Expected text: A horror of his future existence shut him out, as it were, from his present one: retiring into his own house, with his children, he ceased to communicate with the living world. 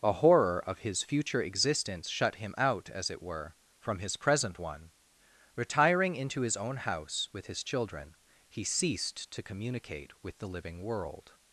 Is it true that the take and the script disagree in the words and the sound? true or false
false